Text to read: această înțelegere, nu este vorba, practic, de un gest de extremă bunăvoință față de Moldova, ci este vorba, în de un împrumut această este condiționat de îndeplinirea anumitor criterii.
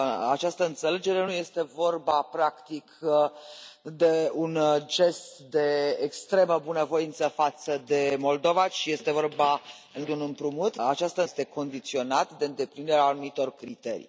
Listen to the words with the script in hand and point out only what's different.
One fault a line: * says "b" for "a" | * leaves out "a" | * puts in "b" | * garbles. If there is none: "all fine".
all fine